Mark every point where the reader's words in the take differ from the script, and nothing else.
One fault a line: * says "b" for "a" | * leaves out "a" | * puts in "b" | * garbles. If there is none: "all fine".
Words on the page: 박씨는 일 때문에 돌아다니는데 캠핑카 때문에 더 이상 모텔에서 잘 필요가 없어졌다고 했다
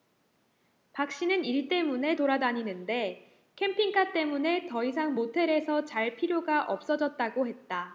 all fine